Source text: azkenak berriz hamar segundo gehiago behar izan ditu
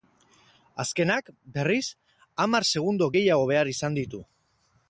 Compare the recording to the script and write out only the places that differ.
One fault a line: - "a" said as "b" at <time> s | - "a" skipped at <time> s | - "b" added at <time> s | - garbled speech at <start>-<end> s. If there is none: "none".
none